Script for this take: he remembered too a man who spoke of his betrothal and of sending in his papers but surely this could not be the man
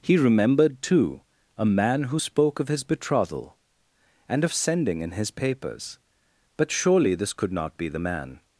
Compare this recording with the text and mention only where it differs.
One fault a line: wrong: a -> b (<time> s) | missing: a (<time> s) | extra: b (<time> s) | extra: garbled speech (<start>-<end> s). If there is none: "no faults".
no faults